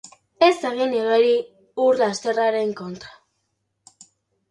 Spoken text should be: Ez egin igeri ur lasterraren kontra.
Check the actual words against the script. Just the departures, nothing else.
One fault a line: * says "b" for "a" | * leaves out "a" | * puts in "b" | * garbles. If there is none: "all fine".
all fine